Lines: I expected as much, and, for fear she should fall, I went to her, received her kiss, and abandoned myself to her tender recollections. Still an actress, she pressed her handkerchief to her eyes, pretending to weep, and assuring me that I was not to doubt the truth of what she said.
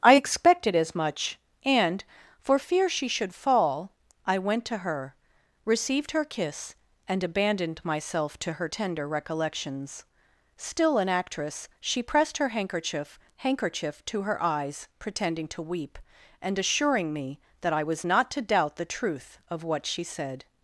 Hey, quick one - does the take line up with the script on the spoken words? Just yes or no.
no